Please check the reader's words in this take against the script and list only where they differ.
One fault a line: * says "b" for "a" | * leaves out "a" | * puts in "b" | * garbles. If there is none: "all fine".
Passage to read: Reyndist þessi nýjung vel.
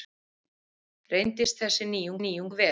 * puts in "nýjung"